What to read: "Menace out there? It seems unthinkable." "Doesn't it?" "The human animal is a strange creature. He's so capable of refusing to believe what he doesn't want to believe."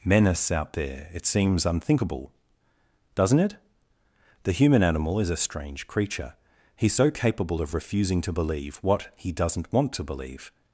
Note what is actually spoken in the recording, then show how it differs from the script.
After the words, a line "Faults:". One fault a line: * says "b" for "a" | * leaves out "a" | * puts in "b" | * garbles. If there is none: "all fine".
"Menace out there? It seems unthinkable." "Doesn't it?" "The human animal is a strange creature. He's so capable of refusing to believe what he doesn't want to believe."
Faults:
all fine